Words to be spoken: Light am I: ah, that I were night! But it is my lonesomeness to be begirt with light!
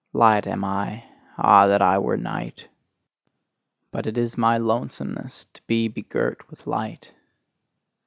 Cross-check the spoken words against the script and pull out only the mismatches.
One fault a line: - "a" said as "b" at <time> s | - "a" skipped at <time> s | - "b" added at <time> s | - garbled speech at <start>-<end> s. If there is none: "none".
none